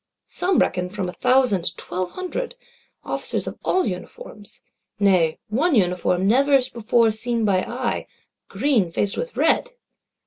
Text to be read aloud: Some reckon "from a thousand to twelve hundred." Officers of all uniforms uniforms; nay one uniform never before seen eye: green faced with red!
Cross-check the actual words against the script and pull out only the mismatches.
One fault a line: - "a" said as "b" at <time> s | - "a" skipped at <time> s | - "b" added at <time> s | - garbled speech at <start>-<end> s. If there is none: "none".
- "uniforms" skipped at 4.6 s
- "by" added at 7.4 s